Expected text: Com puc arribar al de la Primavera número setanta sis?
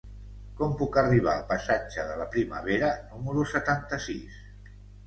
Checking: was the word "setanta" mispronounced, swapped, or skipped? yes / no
no